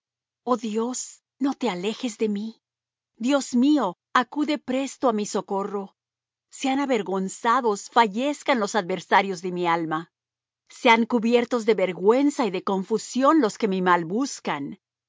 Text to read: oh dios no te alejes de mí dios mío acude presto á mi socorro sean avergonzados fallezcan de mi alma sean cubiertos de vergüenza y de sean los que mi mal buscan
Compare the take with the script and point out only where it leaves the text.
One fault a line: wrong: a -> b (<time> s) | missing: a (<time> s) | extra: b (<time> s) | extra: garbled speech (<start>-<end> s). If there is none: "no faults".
extra: los adversarios (8.6 s)
wrong: sean -> confusión (12.6 s)